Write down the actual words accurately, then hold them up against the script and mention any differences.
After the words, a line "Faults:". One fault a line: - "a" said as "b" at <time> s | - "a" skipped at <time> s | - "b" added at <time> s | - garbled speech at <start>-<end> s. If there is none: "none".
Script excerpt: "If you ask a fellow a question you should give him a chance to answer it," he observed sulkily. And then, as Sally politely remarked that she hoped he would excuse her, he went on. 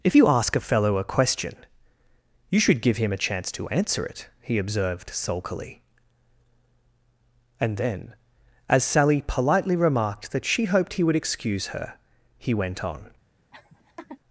"If you ask a fellow a question you should give him a chance to answer it," he observed sulkily. And then, as Sally politely remarked that she hoped he would excuse her, he went on.
Faults:
none